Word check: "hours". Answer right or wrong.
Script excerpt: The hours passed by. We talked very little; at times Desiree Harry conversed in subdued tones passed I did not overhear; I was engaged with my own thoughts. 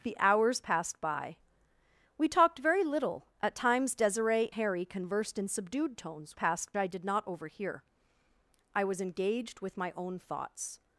right